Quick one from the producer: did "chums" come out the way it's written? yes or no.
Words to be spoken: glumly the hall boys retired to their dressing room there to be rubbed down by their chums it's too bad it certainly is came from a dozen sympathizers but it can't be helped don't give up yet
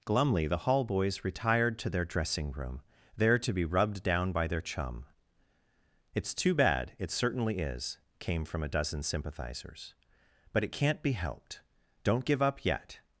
no